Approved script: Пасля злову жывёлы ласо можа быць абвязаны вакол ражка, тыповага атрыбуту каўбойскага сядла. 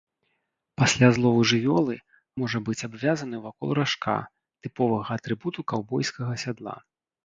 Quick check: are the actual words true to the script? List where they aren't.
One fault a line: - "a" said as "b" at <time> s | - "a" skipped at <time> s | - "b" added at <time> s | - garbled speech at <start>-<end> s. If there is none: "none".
- "ласо" skipped at 1.9 s